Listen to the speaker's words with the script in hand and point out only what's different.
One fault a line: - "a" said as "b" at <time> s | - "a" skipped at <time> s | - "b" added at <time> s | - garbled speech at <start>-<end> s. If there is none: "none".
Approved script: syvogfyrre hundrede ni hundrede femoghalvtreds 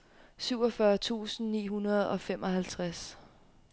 - "hundrede" said as "tusind" at 0.9 s
- "og" added at 2.1 s